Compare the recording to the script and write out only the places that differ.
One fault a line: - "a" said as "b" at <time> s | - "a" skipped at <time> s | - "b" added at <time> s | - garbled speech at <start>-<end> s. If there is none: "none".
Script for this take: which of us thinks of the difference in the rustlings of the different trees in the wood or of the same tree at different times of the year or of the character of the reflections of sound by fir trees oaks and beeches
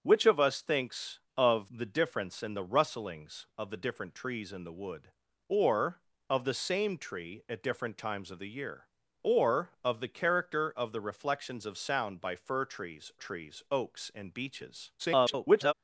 - "trees" added at 13.2 s
- garbled speech at 15.0-15.7 s